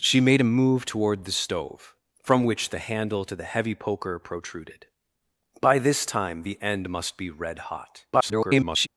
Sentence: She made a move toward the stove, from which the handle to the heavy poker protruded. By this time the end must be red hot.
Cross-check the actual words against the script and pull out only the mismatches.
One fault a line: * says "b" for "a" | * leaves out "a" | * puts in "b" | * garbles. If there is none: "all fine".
* garbles